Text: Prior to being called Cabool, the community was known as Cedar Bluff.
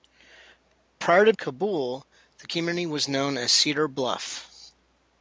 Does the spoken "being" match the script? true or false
false